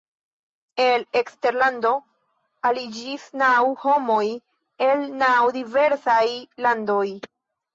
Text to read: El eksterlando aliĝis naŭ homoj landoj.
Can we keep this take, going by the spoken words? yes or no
no